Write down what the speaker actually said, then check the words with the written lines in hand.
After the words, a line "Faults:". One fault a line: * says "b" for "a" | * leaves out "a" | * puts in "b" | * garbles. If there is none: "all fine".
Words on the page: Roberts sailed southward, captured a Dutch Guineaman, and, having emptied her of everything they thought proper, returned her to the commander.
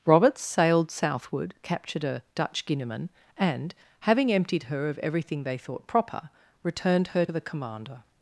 Roberts sailed southward, captured a Dutch Guineaman, and, having emptied her of everything they thought proper, returned her the commander.
Faults:
* leaves out "to"